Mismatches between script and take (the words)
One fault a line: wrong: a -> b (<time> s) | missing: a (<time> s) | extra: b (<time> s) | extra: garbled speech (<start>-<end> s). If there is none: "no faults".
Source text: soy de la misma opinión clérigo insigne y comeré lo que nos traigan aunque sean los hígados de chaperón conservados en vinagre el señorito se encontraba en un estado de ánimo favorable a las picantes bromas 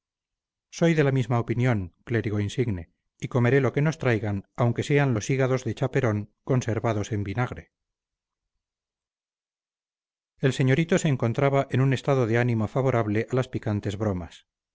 no faults